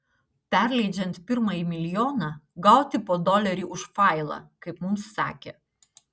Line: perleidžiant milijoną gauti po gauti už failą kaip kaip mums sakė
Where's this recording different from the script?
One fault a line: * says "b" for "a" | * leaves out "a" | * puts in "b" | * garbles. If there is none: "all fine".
* puts in "pirmąjį"
* says "dolerį" for "gauti"
* leaves out "kaip"